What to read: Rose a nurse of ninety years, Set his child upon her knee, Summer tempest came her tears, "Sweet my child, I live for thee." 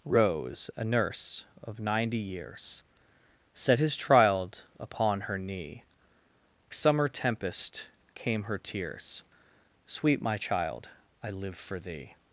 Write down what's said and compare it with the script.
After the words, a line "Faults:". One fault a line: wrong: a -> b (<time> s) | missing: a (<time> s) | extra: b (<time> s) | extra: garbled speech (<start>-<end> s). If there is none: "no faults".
Rose a nurse of ninety years, Set his child upon her knee, Summer tempest came her tears, "Sweet my child, I live for thee."
Faults:
no faults